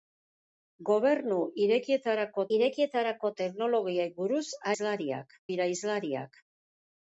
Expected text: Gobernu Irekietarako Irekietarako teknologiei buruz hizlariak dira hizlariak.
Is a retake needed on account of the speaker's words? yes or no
no